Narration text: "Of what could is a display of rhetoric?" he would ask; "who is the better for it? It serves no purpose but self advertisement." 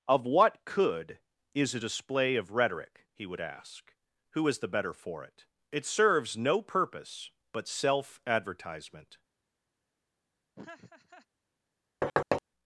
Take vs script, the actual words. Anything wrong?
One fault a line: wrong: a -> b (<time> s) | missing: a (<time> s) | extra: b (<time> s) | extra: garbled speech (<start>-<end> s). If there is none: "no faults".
no faults